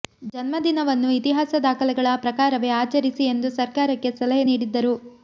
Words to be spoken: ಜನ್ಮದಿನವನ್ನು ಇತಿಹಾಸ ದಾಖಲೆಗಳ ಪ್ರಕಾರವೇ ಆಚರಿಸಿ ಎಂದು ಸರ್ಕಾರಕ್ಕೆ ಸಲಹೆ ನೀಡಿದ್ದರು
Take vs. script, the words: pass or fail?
pass